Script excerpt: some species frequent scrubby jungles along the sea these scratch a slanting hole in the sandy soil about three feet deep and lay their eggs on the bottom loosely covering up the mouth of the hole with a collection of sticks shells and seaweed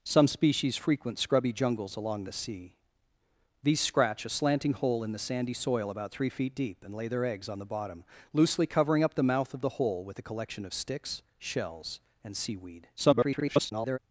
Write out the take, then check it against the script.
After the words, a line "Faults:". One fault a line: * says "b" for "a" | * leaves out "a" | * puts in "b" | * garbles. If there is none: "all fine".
some species frequent scrubby jungles along the sea these scratch a slanting hole in the sandy soil about three feet deep and lay their eggs on the bottom loosely covering up the mouth of the hole with a collection of sticks shells and seaweed [garbled]
Faults:
* garbles